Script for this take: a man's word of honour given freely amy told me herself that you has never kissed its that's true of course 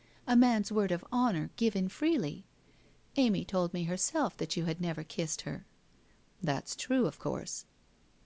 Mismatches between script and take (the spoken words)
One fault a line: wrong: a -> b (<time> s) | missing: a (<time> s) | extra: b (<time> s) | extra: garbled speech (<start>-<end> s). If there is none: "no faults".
wrong: has -> had (4.7 s)
wrong: its -> her (5.4 s)